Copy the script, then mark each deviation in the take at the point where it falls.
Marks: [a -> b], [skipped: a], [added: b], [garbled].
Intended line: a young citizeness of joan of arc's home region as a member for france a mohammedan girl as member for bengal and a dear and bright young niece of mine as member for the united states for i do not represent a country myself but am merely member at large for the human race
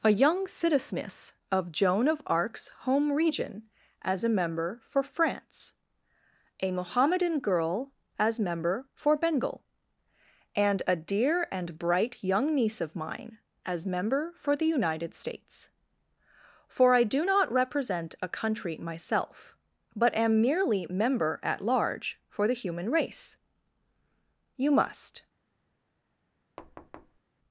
a young citizeness of joan of arc's home region as a member for france a mohammedan girl as member for bengal and a dear and bright young niece of mine as member for the united states for i do not represent a country myself but am merely member at large for the human race [added: you must]